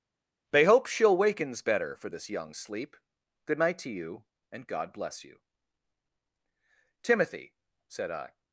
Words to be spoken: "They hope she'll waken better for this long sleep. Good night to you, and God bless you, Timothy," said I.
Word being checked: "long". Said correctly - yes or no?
no